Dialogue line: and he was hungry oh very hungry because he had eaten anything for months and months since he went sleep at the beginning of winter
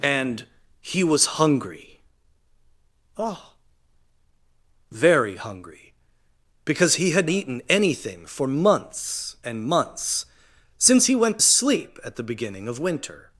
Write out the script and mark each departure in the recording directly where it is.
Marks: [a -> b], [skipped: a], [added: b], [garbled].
and he was hungry oh very hungry because he had eaten anything for months and months since he went sleep at the beginning of winter